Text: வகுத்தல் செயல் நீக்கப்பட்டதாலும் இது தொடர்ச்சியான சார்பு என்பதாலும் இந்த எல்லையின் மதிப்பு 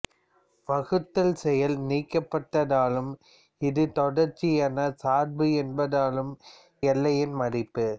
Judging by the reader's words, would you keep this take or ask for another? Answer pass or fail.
fail